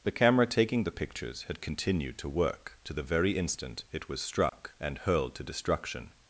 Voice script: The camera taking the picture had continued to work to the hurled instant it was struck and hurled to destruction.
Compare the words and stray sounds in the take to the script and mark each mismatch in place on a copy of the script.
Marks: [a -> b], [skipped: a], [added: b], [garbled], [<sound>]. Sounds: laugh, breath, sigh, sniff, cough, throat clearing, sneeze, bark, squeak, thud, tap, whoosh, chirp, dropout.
The camera taking the [picture -> pictures] had continued to work to the [hurled -> very] instant it was struck [dropout] and hurled to destruction.